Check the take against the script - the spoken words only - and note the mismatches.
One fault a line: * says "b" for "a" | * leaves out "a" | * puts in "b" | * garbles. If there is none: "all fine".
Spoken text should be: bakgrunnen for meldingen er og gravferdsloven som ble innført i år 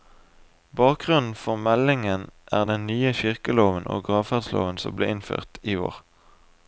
* puts in "den nye kirkeloven"